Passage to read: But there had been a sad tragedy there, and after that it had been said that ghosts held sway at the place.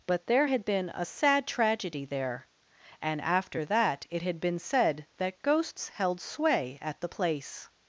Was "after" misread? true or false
false